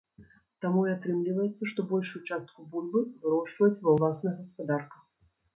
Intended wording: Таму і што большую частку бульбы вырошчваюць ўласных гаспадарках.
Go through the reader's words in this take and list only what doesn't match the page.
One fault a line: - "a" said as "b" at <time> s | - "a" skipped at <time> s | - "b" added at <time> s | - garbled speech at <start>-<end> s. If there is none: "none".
- "атрымліваецца" added at 0.9 s
- "ва" added at 3.8 s